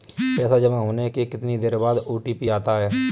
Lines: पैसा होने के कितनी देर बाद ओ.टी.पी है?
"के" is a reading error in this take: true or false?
false